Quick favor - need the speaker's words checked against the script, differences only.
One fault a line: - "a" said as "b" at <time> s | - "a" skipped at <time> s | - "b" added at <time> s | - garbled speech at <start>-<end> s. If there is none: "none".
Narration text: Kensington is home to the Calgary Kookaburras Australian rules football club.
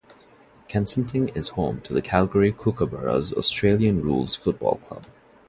none